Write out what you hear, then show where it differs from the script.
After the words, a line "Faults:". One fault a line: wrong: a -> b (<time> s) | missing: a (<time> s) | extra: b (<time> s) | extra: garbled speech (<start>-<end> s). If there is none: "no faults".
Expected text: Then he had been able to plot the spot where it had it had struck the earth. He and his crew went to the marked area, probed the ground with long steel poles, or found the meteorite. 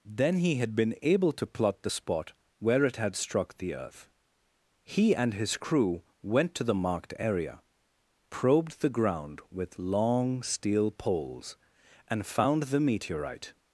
Then he had been able to plot the spot where it had struck the earth. He and his crew went to the marked area, probed the ground with long steel poles, and found the meteorite.
Faults:
missing: it had (3.2 s)
wrong: or -> and (12.1 s)